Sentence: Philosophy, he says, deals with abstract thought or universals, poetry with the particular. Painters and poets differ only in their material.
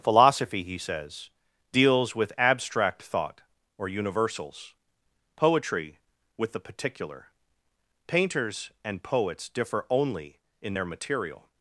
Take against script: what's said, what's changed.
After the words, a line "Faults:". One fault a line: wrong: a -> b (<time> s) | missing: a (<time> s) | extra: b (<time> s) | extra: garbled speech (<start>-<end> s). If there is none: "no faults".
Philosophy, he says, deals with abstract thought or universals, poetry with the particular. Painters and poets differ only in their material.
Faults:
no faults